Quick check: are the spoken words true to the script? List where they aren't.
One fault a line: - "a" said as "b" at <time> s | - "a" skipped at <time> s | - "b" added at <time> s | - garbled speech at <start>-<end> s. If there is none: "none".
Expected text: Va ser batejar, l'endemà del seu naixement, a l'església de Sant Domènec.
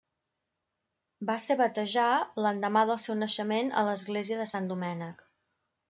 none